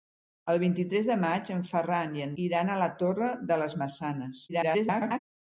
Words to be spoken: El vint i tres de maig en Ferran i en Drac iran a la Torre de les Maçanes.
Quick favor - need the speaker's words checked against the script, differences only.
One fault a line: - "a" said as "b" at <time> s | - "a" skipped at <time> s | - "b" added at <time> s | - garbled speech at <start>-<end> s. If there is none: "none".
- "Drac" skipped at 2.3 s
- garbled speech at 4.5-5.2 s